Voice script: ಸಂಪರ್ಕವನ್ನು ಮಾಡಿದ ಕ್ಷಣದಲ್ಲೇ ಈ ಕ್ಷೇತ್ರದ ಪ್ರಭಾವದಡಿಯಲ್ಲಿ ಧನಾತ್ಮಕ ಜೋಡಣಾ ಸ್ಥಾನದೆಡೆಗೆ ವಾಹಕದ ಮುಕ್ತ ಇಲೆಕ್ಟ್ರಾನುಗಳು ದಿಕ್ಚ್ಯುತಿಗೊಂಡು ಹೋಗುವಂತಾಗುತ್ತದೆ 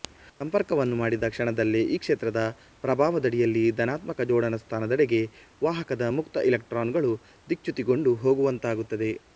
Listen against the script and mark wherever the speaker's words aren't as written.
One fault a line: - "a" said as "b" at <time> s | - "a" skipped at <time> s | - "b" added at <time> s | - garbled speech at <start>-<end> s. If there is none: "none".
none